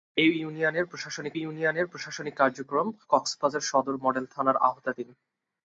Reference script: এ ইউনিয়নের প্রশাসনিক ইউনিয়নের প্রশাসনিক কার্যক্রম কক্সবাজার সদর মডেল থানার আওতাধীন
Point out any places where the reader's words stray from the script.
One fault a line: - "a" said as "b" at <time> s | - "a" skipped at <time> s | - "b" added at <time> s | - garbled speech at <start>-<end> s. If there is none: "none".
none